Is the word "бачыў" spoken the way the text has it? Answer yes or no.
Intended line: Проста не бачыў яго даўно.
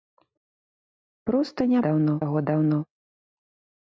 no